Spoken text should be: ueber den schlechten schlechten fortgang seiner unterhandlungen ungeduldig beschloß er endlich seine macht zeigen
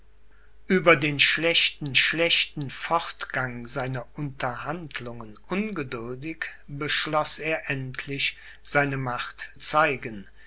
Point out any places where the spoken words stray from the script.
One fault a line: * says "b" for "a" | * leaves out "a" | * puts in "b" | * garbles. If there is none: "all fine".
all fine